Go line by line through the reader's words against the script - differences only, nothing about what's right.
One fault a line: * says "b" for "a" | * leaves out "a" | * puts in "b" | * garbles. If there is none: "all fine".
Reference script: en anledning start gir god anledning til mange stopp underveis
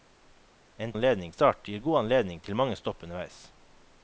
all fine